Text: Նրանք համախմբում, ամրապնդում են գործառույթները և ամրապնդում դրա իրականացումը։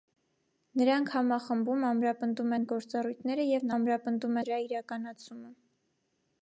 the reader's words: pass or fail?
pass